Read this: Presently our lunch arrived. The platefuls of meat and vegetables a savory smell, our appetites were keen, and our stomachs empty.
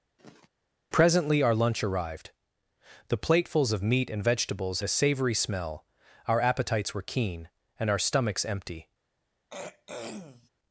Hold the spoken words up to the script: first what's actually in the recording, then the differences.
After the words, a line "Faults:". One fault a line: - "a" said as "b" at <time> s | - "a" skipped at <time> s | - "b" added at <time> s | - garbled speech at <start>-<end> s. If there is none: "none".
Presently our lunch arrived. The platefuls of meat and vegetables a savory smell, our appetites were keen, and our stomachs empty.
Faults:
none